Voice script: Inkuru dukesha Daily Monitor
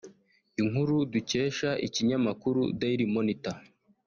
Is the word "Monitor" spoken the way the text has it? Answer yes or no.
yes